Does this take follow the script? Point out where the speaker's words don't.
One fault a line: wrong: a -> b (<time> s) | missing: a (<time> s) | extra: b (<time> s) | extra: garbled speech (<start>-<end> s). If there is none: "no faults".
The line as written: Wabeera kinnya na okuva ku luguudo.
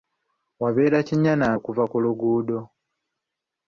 no faults